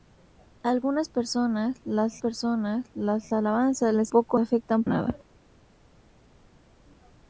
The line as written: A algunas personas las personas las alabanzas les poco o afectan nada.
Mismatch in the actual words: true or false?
false